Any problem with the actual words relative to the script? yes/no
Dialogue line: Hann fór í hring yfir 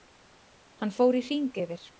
no